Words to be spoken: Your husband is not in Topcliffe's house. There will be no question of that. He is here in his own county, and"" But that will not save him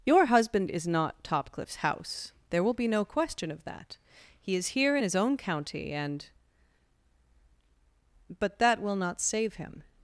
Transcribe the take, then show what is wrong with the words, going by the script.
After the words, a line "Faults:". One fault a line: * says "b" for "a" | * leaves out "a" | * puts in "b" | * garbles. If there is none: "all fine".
Your husband is not Topcliffe's house. There will be no question of that. He is here in his own county, and"" But that will not save him
Faults:
* leaves out "in"